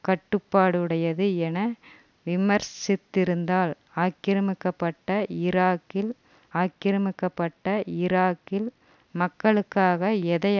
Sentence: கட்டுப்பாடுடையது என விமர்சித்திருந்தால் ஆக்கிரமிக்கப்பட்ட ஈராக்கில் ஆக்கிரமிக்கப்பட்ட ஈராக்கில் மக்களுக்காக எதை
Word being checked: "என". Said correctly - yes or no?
yes